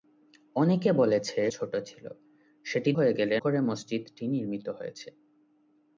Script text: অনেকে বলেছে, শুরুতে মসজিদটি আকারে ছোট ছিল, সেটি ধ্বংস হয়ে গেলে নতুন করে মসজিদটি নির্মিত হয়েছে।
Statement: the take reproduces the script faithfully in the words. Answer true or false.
false